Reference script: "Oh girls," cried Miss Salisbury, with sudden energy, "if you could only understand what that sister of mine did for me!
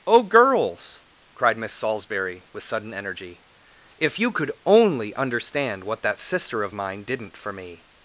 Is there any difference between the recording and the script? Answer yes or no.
yes